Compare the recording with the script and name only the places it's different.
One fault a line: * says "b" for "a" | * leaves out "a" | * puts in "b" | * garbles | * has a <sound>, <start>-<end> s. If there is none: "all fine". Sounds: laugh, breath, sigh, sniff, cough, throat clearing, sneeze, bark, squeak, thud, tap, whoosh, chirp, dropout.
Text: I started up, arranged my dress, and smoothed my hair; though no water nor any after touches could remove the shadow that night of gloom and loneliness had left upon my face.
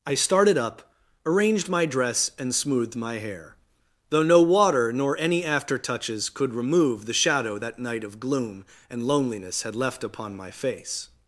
all fine